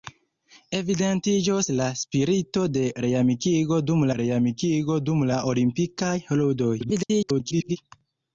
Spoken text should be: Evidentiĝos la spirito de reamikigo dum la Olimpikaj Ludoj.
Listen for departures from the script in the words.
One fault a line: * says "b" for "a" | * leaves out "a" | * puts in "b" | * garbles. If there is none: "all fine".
* puts in "reamikigo dum"
* garbles